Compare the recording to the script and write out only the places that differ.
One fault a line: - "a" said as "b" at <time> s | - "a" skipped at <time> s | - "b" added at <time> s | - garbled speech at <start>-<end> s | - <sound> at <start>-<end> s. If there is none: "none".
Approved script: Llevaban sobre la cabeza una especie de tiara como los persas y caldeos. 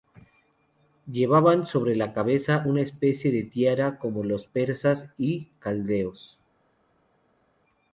none